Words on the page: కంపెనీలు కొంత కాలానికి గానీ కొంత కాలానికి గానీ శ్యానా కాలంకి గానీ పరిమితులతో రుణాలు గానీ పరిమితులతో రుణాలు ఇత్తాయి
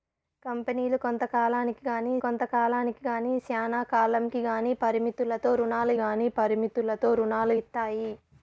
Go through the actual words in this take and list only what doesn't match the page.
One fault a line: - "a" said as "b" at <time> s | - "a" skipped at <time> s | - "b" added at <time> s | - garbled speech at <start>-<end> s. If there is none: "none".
none